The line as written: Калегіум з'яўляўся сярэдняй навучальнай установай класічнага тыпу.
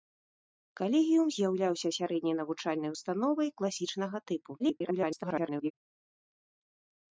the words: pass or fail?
fail